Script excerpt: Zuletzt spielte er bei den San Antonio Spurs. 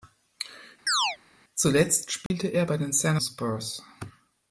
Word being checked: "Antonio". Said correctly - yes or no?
no